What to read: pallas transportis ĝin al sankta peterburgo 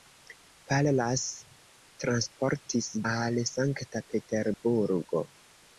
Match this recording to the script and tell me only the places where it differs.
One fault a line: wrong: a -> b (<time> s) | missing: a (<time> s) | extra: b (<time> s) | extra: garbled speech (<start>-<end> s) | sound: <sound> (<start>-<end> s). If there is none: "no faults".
missing: ĝin (2.9 s)
sound: dropout (4.5-4.6 s)